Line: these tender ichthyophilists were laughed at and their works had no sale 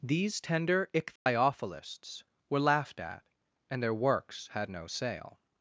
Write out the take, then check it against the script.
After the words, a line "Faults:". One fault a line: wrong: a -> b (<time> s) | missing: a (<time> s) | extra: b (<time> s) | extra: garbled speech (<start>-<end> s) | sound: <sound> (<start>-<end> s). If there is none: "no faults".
these tender ichthyophilists were laughed at and their works had no sale
Faults:
sound: dropout (1.2-1.3 s)